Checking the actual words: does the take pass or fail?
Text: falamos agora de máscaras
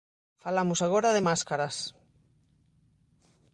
pass